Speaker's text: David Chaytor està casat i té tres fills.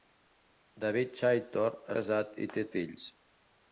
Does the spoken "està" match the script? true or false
false